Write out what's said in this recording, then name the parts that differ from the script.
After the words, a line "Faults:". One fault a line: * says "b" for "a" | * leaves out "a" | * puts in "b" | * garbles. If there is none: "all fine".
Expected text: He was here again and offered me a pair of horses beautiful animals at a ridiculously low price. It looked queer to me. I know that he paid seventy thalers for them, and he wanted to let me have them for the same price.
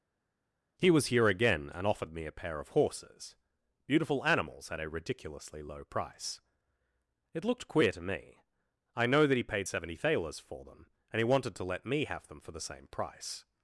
He was here again and offered me a pair of horses beautiful animals at a ridiculously low price. It looked queer to me. I know that he paid seventy thalers for them, and he wanted to let me have them for the same price.
Faults:
all fine